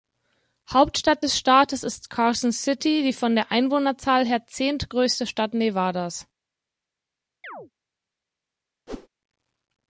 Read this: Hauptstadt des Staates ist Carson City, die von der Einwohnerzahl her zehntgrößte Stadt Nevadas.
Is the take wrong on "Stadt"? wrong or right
right